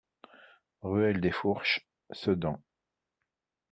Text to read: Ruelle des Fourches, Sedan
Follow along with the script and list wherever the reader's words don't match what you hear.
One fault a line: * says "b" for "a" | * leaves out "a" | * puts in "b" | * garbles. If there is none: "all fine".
all fine